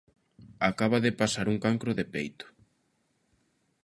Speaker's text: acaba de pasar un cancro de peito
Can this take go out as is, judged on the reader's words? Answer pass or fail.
pass